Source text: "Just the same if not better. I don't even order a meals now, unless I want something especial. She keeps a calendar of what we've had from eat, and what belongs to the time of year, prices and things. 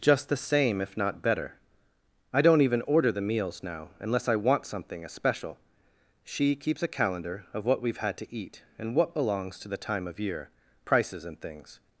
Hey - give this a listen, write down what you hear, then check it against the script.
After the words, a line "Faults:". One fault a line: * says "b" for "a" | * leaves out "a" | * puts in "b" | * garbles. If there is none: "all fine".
"Just the same if not better. I don't even order the meals now, unless I want something especial. She keeps a calendar of what we've had to eat, and what belongs to the time of year, prices and things.
Faults:
* says "the" for "a"
* says "to" for "from"